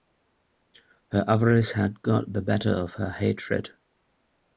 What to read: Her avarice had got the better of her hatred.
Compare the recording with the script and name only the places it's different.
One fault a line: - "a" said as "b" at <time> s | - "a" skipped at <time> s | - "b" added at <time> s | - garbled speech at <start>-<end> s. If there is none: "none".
none